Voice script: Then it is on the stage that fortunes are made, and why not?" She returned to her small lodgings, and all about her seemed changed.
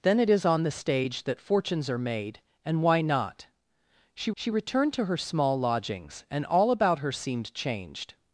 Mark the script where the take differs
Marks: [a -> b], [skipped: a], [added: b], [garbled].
Then it is on the stage that fortunes are made, and why not?" She [added: she] returned to her small lodgings, and all about her seemed changed.